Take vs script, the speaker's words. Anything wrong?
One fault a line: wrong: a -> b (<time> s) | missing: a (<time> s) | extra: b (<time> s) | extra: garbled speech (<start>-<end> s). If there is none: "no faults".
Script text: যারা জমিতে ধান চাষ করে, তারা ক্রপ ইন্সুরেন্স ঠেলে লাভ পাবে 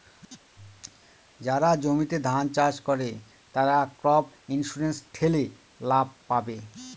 no faults